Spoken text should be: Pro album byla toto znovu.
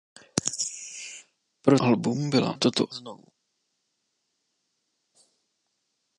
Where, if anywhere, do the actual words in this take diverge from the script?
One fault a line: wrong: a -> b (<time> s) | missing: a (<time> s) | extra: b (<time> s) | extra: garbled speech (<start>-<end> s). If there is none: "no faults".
no faults